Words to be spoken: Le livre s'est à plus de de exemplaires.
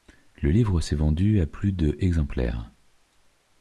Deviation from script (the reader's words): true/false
true